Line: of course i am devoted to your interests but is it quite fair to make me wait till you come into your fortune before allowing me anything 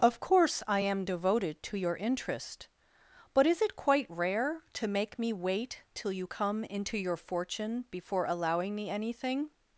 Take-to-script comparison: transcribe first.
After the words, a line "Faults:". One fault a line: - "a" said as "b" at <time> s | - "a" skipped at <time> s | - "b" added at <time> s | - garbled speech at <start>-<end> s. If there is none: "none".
of course i am devoted to your interest but is it quite rare to make me wait till you come into your fortune before allowing me anything
Faults:
- "interests" said as "interest" at 2.0 s
- "fair" said as "rare" at 4.1 s